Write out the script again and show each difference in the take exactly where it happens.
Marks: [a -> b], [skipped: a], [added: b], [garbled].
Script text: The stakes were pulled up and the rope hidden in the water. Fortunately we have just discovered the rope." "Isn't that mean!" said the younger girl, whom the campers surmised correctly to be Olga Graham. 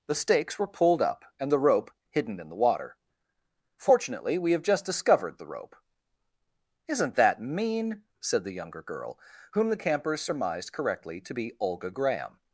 The stakes were pulled up and the rope hidden in the water. Fortunately we have just discovered the rope." "Isn't that mean!" said the younger girl, whom the campers surmised correctly to be Olga Graham.